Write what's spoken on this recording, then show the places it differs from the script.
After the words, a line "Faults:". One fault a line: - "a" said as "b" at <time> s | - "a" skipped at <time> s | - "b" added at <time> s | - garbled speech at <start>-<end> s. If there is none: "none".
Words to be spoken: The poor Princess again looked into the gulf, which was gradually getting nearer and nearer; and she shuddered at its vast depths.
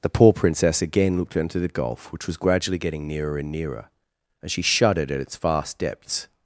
The poor Princess again looked into the gulf, which was gradually getting nearer and nearer; and she shuddered at its vast depths.
Faults:
none